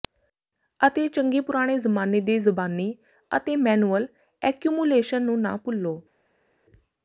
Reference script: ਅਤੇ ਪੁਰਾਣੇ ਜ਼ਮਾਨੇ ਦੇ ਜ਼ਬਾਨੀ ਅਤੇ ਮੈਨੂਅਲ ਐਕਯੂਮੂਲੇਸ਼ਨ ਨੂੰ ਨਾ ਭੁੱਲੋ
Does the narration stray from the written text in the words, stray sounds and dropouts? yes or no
yes